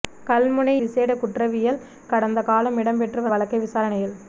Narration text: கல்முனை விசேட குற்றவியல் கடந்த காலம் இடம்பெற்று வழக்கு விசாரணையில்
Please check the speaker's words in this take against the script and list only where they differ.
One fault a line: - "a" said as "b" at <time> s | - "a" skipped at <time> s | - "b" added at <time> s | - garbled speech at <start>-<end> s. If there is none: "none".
none